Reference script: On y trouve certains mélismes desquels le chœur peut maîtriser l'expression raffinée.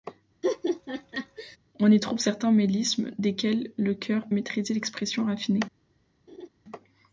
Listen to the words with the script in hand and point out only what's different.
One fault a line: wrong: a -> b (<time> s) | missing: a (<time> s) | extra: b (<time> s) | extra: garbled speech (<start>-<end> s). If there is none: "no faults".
missing: peut (4.3 s)